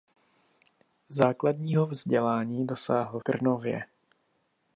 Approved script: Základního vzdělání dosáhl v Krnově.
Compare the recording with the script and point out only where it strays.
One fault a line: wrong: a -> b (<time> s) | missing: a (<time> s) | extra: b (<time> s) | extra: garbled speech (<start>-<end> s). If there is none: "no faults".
missing: v (3.2 s)